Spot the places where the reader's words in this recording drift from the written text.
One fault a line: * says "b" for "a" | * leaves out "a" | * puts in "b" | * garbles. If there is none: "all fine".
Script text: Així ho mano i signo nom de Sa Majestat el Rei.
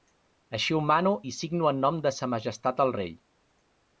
* puts in "en"